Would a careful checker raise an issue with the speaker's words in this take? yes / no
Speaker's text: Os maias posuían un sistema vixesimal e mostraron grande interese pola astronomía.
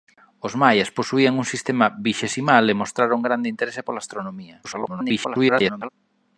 yes